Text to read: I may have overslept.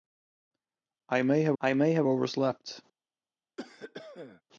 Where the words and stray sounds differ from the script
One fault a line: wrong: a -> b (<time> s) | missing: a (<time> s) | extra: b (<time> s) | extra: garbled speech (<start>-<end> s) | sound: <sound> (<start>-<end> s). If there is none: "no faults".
extra: I may have (1.6 s)
sound: cough (3.6-4.4 s)